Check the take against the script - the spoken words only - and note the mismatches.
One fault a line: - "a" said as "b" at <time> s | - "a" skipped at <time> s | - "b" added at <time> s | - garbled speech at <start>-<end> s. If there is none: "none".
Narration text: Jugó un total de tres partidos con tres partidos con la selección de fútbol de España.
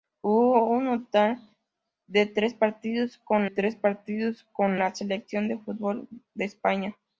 none